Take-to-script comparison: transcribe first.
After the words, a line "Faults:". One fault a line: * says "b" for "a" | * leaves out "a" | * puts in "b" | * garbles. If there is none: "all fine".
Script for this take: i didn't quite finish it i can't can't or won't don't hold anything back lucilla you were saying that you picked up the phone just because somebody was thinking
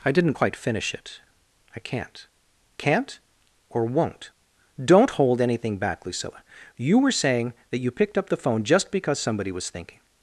i didn't quite finish it i can't can't or won't don't hold anything back lucilla you were saying that you picked up the phone just because somebody was thinking
Faults:
all fine